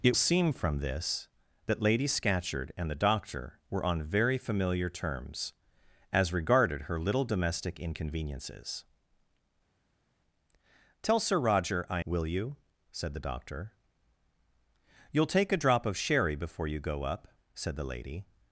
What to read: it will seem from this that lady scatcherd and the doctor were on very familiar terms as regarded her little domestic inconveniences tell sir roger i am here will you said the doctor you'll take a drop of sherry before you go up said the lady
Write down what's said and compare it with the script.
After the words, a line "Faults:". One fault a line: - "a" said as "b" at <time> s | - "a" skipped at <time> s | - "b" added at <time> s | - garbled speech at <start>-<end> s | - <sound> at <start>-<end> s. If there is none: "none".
it seem from this that lady scatcherd and the doctor were on very familiar terms as regarded her little domestic inconveniences tell sir roger i will you said the doctor you'll take a drop of sherry before you go up said the lady
Faults:
- "will" skipped at 0.1 s
- "am here" skipped at 12.0 s